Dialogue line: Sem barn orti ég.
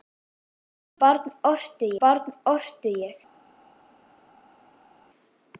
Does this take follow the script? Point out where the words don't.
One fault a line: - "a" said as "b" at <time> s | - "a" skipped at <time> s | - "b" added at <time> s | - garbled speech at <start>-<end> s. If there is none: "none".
- "barn orti" added at 2.0 s